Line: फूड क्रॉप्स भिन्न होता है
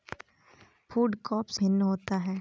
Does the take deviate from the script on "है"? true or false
false